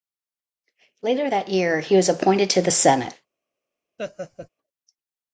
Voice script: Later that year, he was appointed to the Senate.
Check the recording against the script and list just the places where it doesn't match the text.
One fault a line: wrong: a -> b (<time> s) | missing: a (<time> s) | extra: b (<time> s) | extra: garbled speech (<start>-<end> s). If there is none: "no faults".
no faults